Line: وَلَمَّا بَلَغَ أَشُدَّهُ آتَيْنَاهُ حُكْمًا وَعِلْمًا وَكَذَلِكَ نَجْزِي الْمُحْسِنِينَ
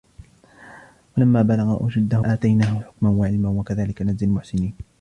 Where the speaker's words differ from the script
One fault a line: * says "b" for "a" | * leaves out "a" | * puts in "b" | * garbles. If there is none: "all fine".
all fine